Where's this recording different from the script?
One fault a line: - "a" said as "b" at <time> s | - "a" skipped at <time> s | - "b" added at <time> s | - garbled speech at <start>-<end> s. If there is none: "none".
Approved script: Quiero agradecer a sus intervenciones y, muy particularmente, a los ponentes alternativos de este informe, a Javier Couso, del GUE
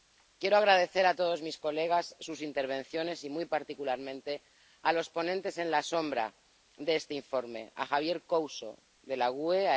- "todos mis colegas" added at 1.1 s